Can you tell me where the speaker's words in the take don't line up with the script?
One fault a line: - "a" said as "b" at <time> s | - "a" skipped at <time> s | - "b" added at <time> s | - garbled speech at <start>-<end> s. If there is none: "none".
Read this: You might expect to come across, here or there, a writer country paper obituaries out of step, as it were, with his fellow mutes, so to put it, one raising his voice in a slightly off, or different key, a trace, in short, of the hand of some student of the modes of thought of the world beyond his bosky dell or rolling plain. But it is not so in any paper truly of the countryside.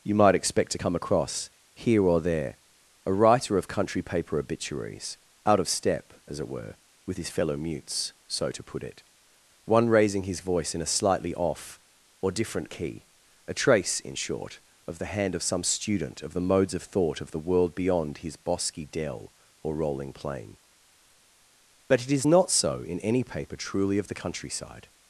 - "of" added at 3.6 s